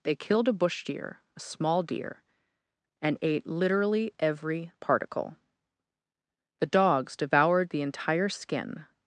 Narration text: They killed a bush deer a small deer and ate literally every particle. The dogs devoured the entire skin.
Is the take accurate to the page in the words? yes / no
yes